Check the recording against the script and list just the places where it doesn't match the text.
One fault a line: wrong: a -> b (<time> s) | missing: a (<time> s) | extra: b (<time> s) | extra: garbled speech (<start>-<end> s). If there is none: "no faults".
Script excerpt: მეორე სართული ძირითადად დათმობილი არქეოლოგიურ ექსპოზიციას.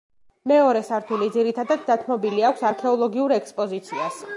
extra: აქვს (2.5 s)